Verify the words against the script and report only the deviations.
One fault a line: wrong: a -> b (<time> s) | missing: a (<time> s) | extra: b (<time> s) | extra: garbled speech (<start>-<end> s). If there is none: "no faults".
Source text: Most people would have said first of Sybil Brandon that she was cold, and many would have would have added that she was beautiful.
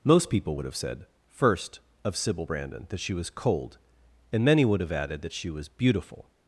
missing: would have (4.9 s)